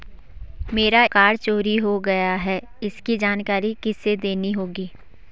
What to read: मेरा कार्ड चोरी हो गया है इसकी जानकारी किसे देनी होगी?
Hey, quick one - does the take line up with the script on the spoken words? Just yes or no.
yes